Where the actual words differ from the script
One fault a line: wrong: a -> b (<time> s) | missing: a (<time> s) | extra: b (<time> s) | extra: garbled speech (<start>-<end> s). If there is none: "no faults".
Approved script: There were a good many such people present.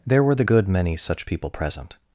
wrong: a -> the (0.3 s)